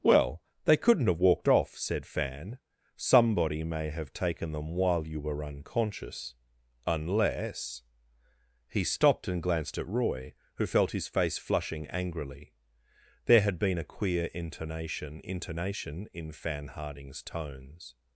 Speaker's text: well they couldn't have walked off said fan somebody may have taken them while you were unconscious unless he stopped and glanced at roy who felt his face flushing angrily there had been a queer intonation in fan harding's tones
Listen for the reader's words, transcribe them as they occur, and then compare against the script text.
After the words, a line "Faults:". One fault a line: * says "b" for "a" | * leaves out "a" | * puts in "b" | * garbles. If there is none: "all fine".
well they couldn't have walked off said fan somebody may have taken them while you were unconscious unless he stopped and glanced at roy who felt his face flushing angrily there had been a queer intonation intonation in fan harding's tones
Faults:
* puts in "intonation"